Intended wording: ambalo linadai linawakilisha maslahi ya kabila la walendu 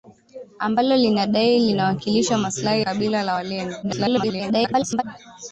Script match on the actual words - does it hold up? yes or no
no